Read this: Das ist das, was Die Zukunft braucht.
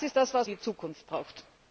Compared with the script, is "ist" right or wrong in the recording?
right